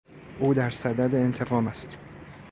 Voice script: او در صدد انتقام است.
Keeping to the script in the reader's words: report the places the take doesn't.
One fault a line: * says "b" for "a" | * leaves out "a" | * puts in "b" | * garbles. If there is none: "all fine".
all fine